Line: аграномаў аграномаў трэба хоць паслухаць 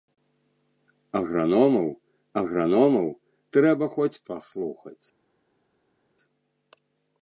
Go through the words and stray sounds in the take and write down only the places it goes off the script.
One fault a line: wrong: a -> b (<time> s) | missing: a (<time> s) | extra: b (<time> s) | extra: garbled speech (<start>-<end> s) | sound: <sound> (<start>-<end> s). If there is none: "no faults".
no faults